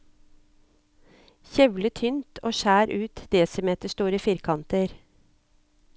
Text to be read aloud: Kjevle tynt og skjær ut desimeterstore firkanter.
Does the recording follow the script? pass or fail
pass